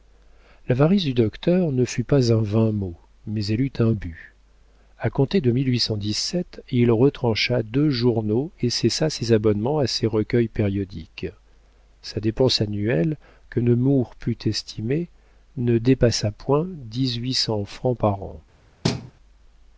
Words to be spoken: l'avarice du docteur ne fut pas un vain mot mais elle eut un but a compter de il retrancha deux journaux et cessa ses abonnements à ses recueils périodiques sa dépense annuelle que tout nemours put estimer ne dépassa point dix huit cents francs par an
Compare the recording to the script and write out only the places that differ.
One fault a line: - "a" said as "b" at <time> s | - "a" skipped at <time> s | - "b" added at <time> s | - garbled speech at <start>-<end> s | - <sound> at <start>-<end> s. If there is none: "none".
- "tout" skipped at 13.6 s
- thud at 18.8-19.1 s